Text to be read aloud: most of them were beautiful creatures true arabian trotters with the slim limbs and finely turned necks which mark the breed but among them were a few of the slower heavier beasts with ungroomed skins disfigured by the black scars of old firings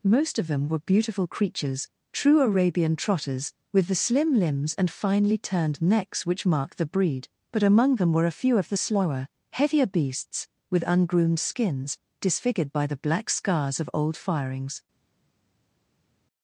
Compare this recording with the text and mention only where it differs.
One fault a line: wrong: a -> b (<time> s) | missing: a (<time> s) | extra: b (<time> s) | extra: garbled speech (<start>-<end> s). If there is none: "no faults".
no faults